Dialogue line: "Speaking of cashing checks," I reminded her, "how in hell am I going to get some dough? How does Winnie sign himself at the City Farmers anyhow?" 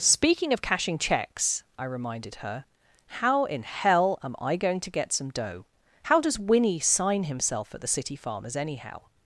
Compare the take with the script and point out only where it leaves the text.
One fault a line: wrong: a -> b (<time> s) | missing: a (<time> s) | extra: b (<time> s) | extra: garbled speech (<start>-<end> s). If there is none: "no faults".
no faults